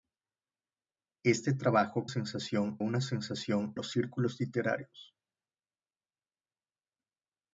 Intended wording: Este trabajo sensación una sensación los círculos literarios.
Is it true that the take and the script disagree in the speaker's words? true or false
false